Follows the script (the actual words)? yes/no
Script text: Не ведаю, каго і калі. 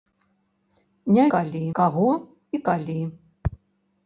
no